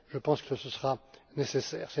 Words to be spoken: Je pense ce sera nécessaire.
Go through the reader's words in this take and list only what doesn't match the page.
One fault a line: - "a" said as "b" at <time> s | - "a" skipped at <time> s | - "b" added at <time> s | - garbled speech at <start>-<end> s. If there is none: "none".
none